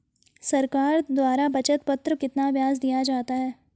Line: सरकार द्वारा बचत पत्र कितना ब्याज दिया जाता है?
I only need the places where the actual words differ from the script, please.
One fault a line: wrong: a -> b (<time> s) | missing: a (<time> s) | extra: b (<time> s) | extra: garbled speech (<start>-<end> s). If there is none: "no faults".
no faults